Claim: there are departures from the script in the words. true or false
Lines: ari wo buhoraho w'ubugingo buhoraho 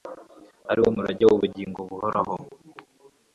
true